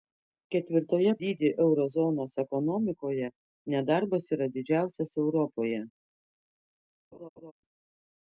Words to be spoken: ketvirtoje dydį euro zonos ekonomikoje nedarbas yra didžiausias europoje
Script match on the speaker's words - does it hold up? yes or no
yes